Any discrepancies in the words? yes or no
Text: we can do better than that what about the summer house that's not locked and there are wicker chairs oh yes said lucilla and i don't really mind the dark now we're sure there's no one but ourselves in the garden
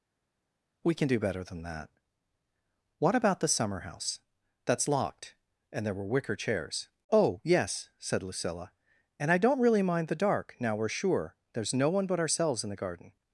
yes